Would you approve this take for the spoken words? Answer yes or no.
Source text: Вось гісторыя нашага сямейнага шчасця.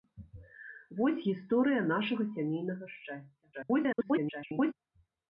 no